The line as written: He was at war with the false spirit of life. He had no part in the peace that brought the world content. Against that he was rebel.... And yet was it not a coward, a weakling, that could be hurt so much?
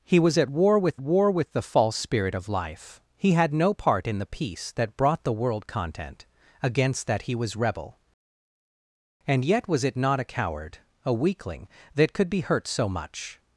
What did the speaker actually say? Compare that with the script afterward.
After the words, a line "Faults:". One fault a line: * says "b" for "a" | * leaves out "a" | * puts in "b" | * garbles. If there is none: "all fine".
He was at war with war with the false spirit of life. He had no part in the peace that brought the world content. Against that he was rebel.... And yet was it not a coward, a weakling, that could be hurt so much?
Faults:
* puts in "war with"